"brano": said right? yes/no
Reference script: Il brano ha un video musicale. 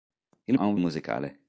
no